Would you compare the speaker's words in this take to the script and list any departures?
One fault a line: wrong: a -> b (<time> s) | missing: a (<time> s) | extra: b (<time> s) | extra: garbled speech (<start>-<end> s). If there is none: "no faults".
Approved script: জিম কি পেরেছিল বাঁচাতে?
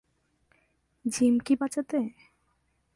missing: পেরেছিল (1.5 s)